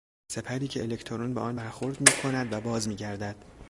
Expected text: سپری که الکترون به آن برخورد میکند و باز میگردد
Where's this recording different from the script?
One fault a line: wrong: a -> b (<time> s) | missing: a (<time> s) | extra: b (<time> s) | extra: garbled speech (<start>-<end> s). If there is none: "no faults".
no faults